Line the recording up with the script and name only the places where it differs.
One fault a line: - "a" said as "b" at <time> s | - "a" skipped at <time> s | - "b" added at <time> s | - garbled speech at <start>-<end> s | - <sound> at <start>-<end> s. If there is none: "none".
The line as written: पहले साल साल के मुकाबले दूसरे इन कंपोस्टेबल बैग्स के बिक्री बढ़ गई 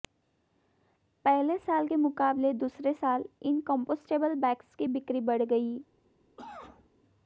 - "साल" skipped at 1.9 s
- "साल" added at 2.9 s
- "के" said as "की" at 4.7 s
- cough at 6.4-6.9 s